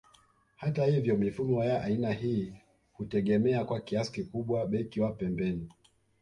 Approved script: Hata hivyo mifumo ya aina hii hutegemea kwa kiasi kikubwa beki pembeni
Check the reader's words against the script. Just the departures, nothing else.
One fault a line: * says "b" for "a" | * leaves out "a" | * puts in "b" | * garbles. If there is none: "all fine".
* puts in "wa"